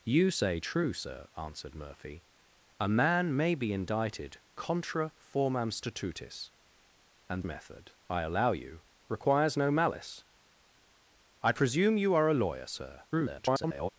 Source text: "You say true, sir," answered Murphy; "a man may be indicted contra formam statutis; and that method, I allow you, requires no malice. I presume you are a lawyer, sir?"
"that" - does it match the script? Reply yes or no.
no